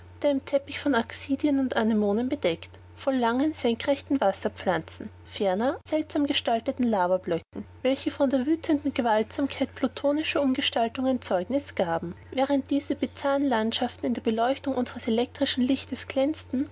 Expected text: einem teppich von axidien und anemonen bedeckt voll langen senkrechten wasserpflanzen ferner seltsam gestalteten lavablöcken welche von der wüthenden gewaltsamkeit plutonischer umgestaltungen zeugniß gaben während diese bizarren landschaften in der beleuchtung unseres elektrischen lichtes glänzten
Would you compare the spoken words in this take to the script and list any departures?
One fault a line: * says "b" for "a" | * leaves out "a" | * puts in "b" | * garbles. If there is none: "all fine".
all fine